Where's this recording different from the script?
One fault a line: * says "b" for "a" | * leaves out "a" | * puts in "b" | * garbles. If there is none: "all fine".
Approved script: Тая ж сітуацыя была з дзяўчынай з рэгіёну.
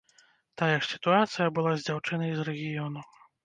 all fine